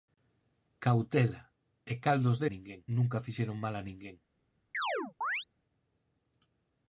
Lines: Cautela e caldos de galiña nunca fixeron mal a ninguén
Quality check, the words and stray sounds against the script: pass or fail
fail